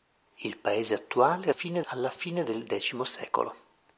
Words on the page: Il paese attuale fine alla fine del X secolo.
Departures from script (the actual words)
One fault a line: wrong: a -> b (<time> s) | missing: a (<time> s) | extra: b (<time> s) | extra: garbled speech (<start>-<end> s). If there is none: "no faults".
no faults